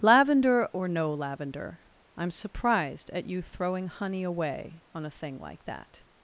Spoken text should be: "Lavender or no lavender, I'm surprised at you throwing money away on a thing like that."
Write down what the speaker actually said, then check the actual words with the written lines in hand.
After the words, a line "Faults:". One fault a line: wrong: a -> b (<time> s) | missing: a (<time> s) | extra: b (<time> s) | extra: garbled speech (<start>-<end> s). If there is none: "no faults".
"Lavender or no lavender, I'm surprised at you throwing honey away on a thing like that."
Faults:
wrong: money -> honey (3.9 s)